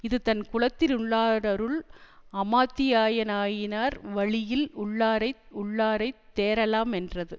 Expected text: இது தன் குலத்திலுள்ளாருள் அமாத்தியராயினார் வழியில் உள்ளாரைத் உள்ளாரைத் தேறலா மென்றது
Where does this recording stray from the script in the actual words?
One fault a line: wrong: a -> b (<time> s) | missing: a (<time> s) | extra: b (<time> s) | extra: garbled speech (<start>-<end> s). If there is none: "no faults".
no faults